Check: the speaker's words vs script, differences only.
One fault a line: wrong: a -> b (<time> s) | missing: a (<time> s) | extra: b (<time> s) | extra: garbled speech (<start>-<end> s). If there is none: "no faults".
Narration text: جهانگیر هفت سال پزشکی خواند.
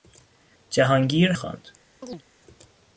missing: هفت سال پزشکی (1.3 s)